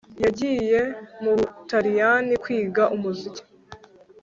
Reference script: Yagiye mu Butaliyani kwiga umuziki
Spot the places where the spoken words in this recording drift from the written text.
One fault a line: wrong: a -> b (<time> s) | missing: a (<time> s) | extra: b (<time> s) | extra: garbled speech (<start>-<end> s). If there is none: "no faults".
no faults